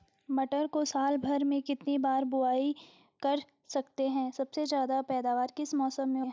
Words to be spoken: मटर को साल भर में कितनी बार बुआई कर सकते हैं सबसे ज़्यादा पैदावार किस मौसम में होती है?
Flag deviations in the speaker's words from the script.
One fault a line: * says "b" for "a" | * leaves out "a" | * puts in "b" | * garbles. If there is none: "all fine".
* leaves out "होती"